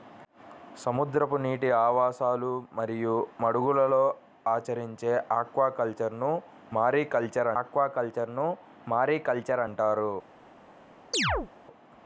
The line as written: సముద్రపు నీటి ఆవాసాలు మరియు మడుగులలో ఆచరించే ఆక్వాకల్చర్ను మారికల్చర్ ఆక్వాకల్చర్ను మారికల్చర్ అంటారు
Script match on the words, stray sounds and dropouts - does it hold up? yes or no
no